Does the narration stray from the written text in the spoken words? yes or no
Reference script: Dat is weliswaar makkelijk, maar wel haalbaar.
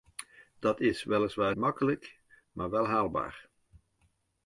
no